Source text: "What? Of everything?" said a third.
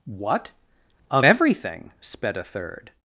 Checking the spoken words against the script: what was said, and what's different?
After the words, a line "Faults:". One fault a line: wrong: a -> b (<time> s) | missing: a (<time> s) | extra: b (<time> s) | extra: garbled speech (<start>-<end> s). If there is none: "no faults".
"What? Of everything?" sped a third.
Faults:
wrong: said -> sped (2.0 s)